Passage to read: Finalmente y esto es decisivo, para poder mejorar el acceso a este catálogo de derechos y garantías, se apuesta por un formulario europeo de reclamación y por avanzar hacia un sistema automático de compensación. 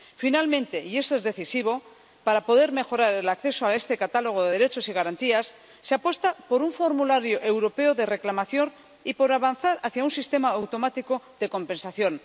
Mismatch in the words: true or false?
false